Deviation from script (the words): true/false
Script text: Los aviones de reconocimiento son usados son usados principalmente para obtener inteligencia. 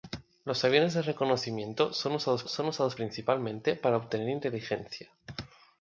false